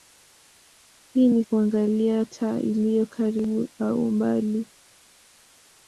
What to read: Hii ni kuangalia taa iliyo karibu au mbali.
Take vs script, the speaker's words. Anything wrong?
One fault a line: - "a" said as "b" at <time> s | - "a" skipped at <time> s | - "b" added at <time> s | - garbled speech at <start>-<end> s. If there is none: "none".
none